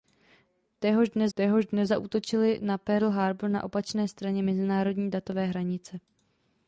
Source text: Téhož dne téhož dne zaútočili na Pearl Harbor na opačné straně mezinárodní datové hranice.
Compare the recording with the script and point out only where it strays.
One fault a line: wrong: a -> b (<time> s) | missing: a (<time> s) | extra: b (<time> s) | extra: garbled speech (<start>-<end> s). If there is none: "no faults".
no faults